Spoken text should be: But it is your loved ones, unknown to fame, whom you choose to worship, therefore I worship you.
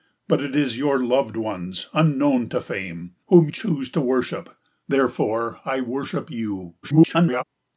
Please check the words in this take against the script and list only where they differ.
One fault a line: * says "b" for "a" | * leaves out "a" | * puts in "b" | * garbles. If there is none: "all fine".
* leaves out "you"
* garbles